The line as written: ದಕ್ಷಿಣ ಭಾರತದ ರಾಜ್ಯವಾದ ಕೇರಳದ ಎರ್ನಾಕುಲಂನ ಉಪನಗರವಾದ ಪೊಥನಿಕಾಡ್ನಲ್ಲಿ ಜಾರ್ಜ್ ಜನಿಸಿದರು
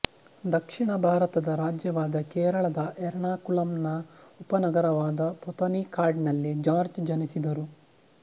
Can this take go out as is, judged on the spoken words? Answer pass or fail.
pass